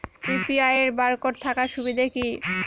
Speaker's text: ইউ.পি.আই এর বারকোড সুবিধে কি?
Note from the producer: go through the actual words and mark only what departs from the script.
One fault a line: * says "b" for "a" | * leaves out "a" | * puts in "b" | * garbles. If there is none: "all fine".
* puts in "থাকার"